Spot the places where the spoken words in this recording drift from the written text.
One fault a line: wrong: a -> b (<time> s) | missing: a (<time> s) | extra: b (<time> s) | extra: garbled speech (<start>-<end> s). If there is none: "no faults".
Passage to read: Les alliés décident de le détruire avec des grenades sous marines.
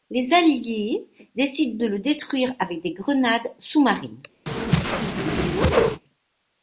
no faults